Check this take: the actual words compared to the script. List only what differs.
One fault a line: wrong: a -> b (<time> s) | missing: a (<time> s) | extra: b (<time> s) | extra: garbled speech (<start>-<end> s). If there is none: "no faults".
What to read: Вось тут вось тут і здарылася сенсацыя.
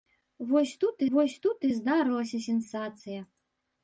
no faults